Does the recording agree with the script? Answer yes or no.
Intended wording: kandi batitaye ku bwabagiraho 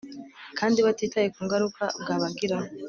no